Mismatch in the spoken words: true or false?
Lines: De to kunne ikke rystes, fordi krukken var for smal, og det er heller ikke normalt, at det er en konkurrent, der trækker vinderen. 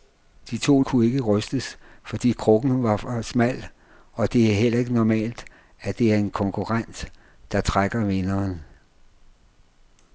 false